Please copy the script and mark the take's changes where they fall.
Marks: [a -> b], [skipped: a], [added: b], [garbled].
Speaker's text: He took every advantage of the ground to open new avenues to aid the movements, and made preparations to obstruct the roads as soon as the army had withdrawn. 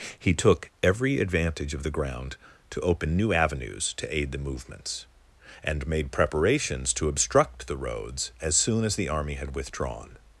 He took every advantage of the ground to open new avenues to aid the movements, and made preparations to obstruct the roads as soon as the army had withdrawn.